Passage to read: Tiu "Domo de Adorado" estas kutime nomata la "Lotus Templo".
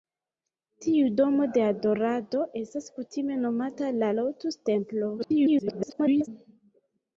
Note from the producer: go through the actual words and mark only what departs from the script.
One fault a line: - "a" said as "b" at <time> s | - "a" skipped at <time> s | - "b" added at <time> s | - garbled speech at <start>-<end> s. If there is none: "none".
- garbled speech at 5.2-6.3 s